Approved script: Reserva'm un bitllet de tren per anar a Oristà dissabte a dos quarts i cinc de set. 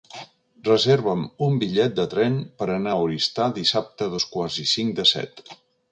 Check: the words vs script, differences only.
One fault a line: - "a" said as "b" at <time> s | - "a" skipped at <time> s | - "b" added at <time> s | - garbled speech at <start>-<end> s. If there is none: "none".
none